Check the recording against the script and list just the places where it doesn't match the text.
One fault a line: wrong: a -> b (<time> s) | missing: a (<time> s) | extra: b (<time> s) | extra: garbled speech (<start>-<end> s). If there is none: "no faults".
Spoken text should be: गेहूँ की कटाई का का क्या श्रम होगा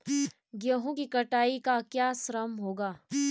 missing: का (1.8 s)